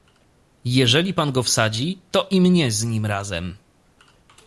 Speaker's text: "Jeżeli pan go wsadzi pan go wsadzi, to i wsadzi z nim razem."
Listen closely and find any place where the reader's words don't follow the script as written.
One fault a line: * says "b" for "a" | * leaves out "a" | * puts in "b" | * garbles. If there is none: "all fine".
* leaves out "pan go wsadzi"
* says "mnie" for "wsadzi"